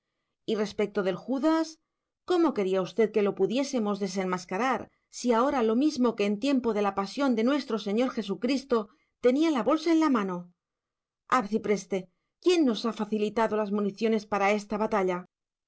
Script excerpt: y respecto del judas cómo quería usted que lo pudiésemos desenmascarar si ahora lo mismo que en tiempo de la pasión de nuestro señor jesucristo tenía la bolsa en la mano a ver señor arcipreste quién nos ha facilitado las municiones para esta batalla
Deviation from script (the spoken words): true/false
true